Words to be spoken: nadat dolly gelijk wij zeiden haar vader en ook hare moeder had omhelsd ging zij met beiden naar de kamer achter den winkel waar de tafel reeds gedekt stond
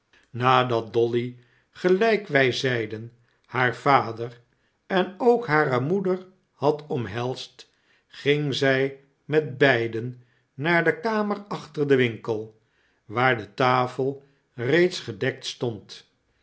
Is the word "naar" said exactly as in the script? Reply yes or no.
yes